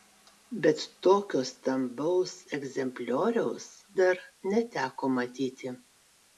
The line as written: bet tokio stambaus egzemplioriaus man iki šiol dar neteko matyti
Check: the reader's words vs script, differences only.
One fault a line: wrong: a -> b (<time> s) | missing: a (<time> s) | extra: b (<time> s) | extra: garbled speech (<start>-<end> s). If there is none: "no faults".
missing: man iki šiol (3.7 s)